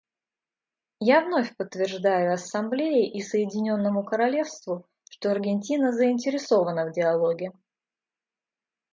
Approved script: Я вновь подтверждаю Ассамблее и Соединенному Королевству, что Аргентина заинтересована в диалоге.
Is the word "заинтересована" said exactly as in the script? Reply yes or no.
yes